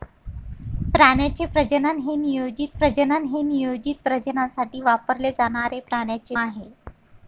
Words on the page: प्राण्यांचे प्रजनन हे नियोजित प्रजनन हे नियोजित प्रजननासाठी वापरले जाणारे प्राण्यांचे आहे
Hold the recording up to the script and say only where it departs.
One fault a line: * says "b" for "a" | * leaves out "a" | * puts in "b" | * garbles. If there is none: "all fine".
all fine